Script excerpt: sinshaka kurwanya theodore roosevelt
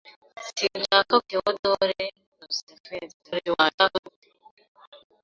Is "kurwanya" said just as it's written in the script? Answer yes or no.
no